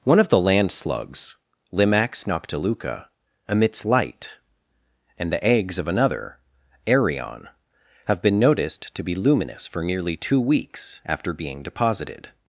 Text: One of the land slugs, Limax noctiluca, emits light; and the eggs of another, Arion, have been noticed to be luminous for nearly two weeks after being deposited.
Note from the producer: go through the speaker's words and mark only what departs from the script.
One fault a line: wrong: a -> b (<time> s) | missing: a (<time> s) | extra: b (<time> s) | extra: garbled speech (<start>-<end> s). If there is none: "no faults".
no faults